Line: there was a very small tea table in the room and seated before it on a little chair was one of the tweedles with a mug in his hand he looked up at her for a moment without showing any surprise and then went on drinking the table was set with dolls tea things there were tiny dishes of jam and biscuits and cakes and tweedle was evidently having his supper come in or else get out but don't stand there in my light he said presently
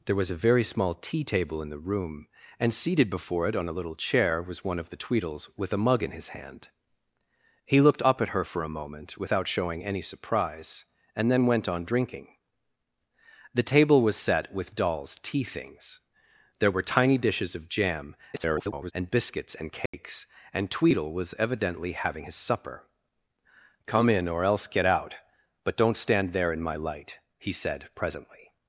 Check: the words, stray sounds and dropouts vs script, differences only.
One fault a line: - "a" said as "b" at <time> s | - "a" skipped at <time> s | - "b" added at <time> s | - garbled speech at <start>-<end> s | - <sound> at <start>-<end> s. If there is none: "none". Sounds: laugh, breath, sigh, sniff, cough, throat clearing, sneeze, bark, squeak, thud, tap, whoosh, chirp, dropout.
- garbled speech at 18.3-18.9 s
- dropout at 19.9-19.9 s